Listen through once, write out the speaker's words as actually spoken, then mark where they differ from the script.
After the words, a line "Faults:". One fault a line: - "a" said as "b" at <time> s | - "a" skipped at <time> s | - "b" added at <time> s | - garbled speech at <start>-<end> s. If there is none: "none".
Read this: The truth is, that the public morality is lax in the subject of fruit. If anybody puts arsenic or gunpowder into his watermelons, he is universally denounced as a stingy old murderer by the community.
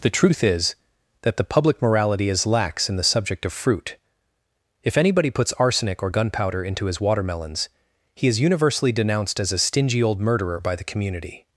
The truth is, that the public morality is lax in the subject of fruit. If anybody puts arsenic or gunpowder into his watermelons, he is universally denounced as a stingy old murderer by the community.
Faults:
none